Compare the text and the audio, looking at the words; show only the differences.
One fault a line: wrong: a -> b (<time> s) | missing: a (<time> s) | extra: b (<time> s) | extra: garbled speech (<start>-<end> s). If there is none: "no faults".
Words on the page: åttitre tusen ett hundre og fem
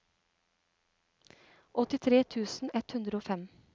no faults